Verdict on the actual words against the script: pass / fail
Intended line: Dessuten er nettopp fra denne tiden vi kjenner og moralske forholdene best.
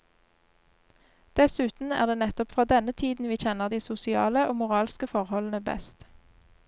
fail